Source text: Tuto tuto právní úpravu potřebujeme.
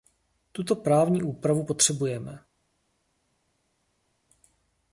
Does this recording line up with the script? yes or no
no